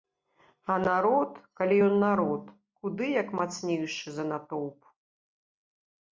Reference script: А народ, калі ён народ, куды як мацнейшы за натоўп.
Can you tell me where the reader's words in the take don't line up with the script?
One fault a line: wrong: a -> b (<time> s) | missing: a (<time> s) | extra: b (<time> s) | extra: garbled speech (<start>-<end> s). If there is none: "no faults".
no faults